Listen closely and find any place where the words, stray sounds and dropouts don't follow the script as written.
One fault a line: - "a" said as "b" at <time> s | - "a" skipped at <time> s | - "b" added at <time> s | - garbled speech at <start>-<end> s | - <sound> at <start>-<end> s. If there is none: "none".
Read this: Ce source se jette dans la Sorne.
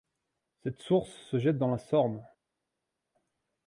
- "Ce" said as "Cette" at 0.6 s